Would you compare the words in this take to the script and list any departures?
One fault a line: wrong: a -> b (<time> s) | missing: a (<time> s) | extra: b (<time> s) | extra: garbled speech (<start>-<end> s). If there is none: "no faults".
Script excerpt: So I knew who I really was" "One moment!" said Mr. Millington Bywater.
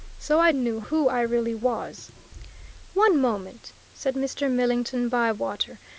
no faults